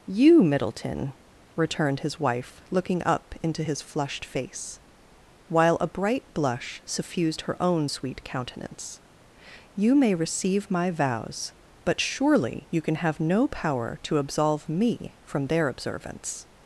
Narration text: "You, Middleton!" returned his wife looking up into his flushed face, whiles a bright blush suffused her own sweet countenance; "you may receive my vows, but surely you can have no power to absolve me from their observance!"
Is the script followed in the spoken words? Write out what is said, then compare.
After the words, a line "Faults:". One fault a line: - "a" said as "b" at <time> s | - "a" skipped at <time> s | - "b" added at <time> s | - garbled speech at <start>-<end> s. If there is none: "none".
"You, Middleton!" returned his wife looking up into his flushed face, while a bright blush suffused her own sweet countenance; "you may receive my vows, but surely you can have no power to absolve me from their observance!"
Faults:
- "whiles" said as "while" at 5.5 s